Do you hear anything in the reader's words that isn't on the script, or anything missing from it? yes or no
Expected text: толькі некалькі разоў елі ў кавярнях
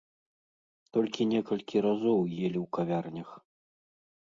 no